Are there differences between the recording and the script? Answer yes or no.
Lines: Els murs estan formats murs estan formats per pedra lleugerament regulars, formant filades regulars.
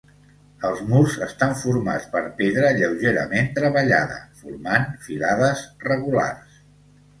yes